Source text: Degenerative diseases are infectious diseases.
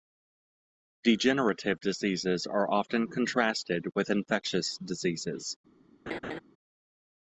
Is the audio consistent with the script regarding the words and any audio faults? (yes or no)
no